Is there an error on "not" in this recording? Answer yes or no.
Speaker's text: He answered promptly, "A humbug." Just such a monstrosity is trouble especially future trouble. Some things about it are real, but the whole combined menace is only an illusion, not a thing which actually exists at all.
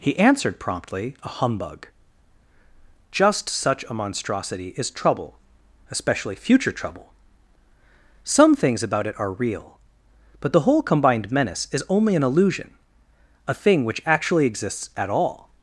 yes